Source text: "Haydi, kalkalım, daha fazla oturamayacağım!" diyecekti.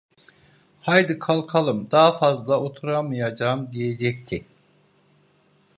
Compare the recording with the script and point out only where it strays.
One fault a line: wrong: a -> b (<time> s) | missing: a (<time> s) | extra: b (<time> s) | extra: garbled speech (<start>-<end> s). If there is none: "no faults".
no faults